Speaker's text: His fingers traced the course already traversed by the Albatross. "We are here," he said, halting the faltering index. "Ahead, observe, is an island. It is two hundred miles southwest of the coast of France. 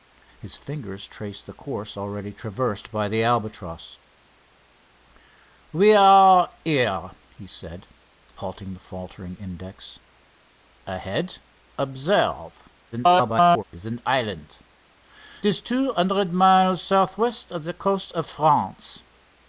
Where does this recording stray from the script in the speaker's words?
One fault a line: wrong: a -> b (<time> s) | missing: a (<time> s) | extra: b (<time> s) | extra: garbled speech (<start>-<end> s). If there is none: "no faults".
extra: garbled speech (12.9-13.6 s)
missing: It (14.6 s)